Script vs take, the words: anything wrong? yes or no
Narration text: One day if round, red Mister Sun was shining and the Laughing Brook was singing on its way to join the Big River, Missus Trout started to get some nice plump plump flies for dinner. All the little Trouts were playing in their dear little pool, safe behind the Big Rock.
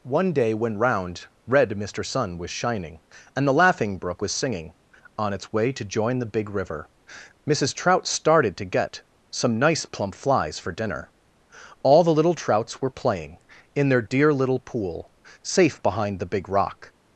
yes